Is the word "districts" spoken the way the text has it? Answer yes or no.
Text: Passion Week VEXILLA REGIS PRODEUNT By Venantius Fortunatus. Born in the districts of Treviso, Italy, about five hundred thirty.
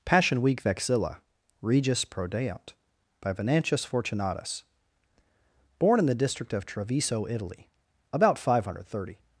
no